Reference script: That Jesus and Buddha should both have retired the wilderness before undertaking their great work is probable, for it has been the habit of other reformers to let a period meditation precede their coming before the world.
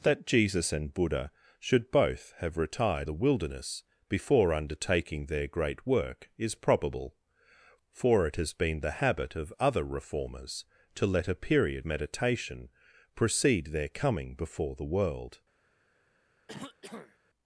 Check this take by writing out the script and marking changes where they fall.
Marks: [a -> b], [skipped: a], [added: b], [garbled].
That Jesus and Buddha should both have retired the wilderness before undertaking their great work is probable, for it has been the habit of other reformers to let a period meditation precede their coming before the world.